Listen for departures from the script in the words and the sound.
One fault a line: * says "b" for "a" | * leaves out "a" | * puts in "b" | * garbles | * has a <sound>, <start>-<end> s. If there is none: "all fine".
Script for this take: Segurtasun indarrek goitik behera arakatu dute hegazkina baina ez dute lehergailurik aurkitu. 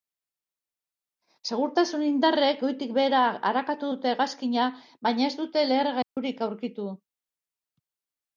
* has a dropout, 6.0-6.2 s